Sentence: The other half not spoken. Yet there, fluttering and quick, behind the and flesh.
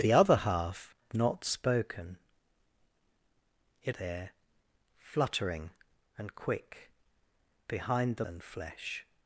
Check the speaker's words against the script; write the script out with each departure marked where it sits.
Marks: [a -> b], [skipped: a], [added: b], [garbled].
The other half not spoken. Yet there, fluttering and quick, behind the and flesh.